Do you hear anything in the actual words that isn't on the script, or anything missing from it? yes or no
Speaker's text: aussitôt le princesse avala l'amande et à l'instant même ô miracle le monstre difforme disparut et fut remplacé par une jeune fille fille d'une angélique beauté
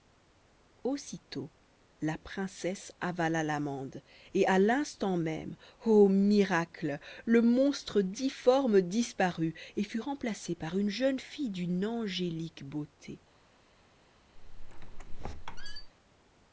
yes